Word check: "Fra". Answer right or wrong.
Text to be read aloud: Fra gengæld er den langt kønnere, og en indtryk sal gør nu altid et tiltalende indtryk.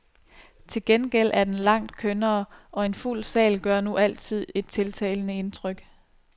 wrong